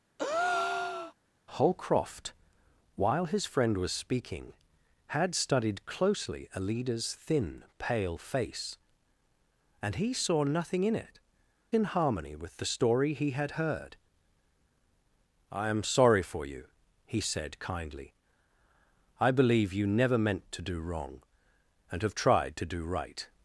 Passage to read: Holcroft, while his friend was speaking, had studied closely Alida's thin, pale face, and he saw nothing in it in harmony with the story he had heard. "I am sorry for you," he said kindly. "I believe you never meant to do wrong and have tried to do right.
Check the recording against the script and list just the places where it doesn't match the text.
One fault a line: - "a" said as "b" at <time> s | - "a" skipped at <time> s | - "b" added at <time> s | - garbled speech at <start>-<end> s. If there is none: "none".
none